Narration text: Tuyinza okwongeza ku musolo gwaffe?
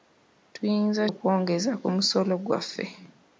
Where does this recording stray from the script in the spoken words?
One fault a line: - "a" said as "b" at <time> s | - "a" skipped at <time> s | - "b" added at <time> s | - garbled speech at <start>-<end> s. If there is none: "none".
none